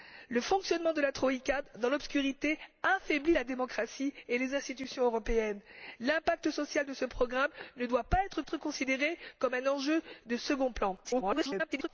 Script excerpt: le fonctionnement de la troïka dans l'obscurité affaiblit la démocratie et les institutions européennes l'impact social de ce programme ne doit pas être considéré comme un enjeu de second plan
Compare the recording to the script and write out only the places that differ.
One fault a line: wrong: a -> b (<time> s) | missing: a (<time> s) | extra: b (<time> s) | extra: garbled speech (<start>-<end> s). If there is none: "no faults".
extra: être (8.4 s)
extra: garbled speech (11.0-11.9 s)